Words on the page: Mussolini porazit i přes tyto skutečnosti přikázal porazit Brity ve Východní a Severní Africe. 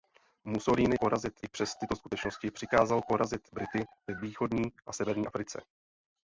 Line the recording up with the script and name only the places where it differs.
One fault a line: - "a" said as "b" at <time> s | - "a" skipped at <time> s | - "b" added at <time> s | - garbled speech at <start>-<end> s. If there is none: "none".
none